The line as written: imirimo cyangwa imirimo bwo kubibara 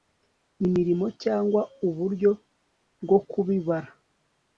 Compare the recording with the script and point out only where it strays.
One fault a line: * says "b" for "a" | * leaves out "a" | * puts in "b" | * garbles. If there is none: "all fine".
* says "uburyo" for "imirimo"